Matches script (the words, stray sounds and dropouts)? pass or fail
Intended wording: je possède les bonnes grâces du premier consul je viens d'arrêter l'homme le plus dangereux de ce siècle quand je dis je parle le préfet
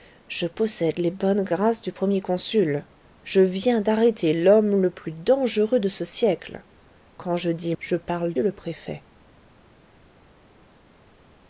pass